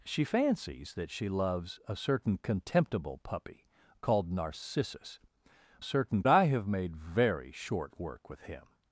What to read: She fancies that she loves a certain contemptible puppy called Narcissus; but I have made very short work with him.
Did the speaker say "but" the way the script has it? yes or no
no